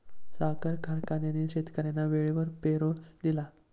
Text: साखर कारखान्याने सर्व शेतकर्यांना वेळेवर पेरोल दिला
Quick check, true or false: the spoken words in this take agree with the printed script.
false